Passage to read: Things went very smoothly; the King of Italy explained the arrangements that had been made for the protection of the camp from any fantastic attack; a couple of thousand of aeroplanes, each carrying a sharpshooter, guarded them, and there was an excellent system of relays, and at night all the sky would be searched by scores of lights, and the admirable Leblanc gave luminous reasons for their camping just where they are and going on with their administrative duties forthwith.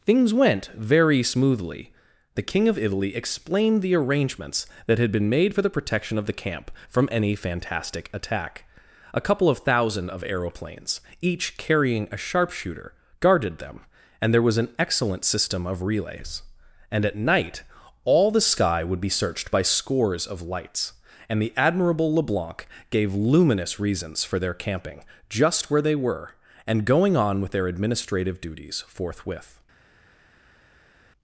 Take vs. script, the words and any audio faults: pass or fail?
fail